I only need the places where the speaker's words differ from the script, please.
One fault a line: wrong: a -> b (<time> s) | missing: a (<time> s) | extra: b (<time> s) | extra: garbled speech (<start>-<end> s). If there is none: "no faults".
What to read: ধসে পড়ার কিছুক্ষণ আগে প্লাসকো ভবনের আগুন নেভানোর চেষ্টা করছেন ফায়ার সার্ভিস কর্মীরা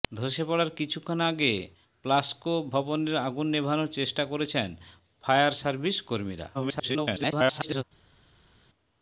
extra: garbled speech (6.5-7.8 s)